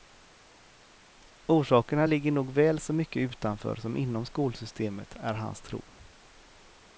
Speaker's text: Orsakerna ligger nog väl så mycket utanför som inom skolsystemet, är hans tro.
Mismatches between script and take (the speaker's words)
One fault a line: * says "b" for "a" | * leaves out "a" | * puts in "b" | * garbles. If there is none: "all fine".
all fine